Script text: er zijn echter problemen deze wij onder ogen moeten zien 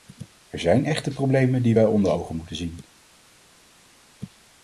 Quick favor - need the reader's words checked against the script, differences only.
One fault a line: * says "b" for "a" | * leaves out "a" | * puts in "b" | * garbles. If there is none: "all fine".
* says "die" for "deze"